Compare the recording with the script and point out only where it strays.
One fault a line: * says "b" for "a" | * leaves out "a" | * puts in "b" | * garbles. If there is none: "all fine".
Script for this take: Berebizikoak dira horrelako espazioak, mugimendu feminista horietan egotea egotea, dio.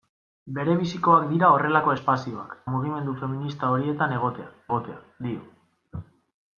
all fine